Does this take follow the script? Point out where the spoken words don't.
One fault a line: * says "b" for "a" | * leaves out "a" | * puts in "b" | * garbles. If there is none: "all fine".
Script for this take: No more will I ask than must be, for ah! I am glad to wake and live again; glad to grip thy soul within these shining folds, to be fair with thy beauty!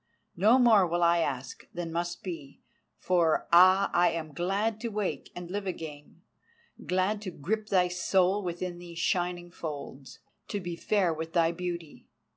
all fine